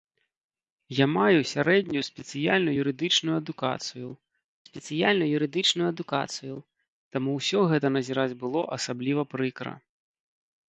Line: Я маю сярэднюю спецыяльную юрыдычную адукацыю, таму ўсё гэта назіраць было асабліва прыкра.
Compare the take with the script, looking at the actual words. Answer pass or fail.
fail